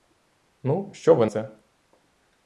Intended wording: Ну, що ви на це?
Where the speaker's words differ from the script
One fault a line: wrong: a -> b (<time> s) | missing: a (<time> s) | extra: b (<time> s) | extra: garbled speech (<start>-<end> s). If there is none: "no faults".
missing: на (1.3 s)